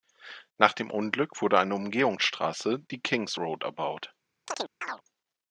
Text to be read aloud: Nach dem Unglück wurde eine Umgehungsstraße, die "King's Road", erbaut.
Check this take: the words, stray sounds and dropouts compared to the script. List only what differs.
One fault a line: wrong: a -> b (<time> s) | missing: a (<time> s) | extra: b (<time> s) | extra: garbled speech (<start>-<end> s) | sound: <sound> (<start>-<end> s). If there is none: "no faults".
sound: chirp (4.5-5.0 s)